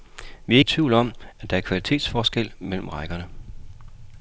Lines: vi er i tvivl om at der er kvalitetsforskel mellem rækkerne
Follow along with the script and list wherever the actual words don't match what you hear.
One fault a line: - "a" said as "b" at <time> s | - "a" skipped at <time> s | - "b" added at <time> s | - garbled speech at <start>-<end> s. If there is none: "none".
none